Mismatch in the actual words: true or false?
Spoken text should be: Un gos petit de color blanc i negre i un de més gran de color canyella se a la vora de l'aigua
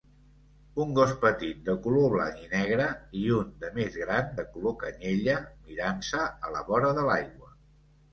true